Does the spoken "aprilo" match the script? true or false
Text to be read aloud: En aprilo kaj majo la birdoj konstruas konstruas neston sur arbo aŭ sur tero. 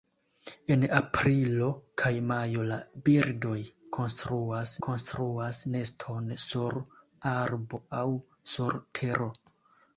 true